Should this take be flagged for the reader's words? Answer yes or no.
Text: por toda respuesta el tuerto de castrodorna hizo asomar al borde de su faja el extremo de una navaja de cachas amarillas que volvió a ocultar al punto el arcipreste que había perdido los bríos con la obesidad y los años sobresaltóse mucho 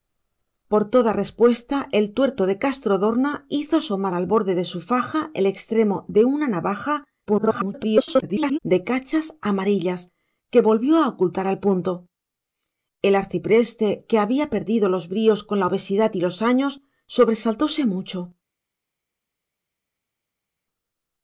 yes